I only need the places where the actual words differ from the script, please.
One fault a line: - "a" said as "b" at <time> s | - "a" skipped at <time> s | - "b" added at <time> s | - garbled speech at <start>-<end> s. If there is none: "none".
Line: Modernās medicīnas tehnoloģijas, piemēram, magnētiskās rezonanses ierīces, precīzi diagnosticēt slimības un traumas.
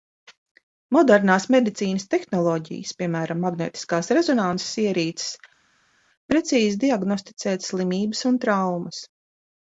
none